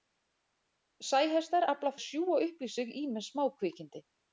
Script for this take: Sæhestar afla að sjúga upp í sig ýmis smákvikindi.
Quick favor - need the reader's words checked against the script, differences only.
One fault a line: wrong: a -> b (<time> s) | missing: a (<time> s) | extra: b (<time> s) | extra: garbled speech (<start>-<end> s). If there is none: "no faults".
no faults